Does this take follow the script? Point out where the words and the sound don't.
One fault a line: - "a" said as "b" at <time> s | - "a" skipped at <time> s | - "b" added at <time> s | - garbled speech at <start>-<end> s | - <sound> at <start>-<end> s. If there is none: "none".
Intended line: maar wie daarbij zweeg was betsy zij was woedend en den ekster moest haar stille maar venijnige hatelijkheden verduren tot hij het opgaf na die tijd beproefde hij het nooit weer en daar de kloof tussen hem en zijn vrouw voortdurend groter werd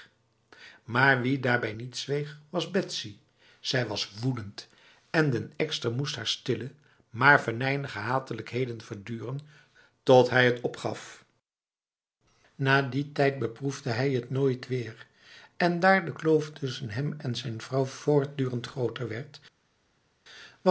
- "niet" added at 1.7 s